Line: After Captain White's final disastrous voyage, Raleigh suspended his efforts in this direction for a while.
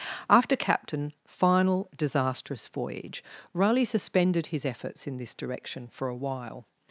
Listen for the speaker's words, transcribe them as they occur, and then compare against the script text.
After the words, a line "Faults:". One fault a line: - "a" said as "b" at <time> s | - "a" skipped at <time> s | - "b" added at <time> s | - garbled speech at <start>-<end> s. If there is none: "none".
After Captain final disastrous voyage, Raleigh suspended his efforts in this direction for a while.
Faults:
- "White's" skipped at 1.1 s